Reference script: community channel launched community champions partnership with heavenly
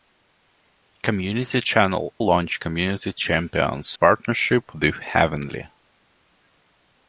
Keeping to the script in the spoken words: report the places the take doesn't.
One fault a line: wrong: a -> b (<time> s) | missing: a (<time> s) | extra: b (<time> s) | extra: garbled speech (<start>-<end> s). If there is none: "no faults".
no faults